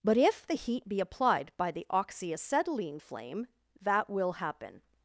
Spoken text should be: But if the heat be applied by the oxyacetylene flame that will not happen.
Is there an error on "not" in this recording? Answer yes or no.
yes